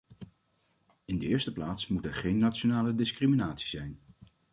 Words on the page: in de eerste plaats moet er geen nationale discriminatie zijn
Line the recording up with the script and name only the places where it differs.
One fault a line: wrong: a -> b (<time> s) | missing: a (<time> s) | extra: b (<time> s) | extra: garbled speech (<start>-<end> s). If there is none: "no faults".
no faults